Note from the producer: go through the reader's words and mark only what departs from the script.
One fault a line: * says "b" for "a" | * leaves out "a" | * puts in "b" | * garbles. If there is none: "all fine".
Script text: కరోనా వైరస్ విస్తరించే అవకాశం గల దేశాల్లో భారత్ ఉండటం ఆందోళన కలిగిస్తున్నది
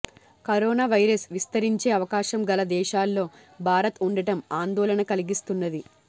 all fine